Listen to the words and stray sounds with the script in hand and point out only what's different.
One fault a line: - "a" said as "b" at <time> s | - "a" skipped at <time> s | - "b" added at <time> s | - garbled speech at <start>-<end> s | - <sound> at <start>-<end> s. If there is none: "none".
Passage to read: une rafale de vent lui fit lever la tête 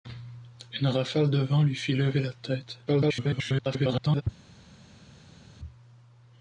- garbled speech at 2.9-4.2 s